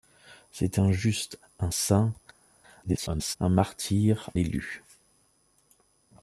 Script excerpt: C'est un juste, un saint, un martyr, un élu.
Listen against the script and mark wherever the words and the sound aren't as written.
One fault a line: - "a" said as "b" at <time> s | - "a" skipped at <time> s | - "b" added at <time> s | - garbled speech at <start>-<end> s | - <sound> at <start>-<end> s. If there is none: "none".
- garbled speech at 2.8-3.4 s
- "un" skipped at 4.3 s